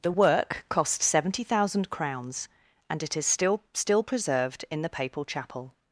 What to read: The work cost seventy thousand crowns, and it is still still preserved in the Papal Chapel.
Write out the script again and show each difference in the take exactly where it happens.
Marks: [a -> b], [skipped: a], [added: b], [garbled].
The work cost seventy thousand crowns, and it is still still preserved in the Papal Chapel.